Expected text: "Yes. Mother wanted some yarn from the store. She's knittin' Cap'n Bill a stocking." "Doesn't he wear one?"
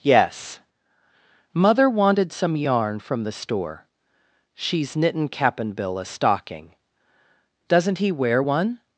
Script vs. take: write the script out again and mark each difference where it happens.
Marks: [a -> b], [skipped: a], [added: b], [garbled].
"Yes. Mother wanted some yarn from the store. She's knittin' Cap'n Bill a stocking." "Doesn't he wear one?"